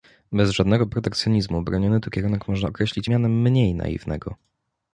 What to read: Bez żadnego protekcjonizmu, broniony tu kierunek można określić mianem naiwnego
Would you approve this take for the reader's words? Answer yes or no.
no